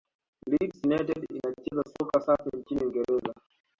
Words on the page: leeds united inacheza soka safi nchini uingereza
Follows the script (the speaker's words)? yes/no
yes